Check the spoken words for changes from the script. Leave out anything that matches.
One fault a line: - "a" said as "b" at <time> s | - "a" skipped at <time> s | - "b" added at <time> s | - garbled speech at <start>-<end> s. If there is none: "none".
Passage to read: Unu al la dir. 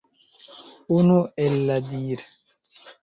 - "al" said as "el" at 1.5 s